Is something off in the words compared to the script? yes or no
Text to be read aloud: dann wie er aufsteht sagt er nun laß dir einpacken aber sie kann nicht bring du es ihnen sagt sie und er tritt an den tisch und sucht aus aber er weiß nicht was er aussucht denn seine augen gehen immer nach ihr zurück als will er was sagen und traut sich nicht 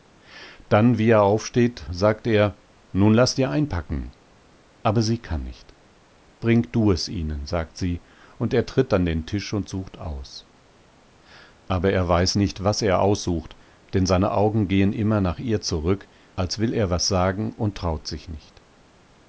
no